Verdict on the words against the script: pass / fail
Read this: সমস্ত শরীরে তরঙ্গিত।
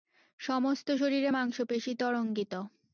fail